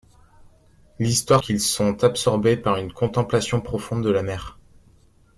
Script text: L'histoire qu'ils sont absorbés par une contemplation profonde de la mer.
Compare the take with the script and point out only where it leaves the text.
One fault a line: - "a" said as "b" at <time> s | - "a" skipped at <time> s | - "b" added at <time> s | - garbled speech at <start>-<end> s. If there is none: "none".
none